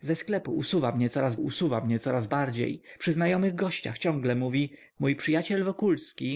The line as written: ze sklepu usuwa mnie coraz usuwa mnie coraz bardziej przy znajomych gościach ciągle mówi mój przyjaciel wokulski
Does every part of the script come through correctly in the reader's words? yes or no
yes